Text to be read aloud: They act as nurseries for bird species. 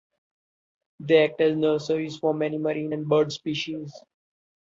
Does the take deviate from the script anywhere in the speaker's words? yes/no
yes